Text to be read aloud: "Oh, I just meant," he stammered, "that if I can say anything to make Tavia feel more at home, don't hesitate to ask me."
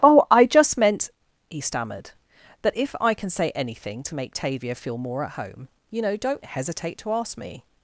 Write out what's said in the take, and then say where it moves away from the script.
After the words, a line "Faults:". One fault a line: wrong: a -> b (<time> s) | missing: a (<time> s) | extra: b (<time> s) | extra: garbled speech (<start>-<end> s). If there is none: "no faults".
"Oh, I just meant," he stammered, "that if I can say anything to make Tavia feel more at home, you know don't hesitate to ask me."
Faults:
extra: you know (5.9 s)